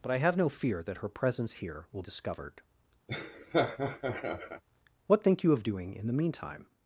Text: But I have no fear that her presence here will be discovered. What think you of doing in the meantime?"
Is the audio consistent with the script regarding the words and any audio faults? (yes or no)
no